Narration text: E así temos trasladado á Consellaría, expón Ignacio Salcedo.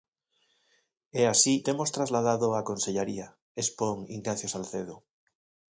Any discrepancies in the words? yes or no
no